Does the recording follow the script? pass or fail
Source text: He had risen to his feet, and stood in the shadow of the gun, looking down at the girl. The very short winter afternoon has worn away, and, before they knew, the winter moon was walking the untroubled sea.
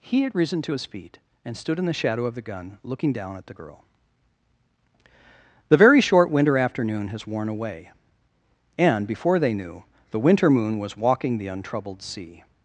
pass